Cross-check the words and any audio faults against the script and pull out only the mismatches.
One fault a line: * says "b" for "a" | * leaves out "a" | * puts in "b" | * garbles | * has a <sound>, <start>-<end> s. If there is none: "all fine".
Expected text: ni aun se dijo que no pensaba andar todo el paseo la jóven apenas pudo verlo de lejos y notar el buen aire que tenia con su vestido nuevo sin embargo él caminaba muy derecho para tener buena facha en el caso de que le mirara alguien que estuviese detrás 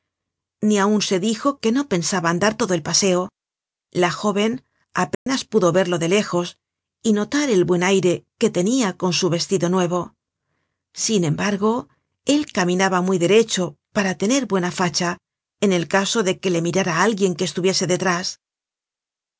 * has a dropout, 5.1-5.3 s